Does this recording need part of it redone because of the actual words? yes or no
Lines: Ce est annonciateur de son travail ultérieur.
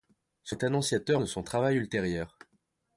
no